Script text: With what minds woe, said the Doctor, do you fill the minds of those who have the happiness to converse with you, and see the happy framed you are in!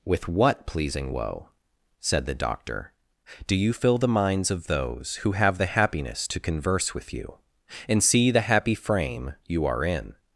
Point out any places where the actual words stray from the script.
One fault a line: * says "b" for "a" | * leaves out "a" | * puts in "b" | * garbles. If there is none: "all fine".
* says "pleasing" for "minds"
* says "frame" for "framed"